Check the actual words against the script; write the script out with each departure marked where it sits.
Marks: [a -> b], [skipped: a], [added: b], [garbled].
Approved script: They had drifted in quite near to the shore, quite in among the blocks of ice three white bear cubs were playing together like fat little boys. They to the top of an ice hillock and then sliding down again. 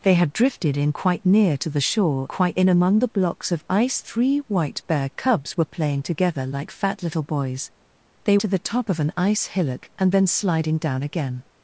They had drifted in quite near to the shore, quite in among the blocks of ice three white bear cubs were playing together like fat little boys. They to the top of an ice hillock and then sliding down again.